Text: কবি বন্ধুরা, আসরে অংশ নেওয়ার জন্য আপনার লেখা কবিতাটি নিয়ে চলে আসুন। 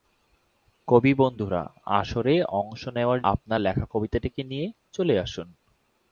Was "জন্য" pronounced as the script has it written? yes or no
no